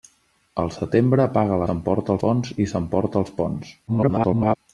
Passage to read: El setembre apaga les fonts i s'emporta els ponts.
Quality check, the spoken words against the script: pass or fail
fail